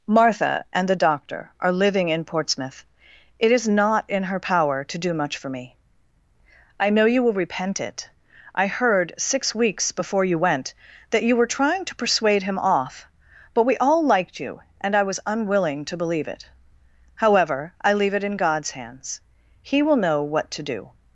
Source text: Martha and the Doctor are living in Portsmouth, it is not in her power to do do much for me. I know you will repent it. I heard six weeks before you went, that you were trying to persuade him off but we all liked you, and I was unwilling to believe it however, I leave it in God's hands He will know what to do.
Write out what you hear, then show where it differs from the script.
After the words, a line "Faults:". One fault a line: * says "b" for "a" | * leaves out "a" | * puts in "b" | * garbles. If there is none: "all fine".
Martha and the Doctor are living in Portsmouth, it is not in her power to do much for me. I know you will repent it. I heard six weeks before you went, that you were trying to persuade him off but we all liked you, and I was unwilling to believe it however, I leave it in God's hands He will know what to do.
Faults:
* leaves out "do"